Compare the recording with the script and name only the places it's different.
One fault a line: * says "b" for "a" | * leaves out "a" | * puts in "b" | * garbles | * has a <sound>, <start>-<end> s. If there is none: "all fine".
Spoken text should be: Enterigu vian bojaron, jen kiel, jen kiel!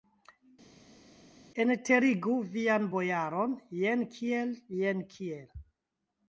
all fine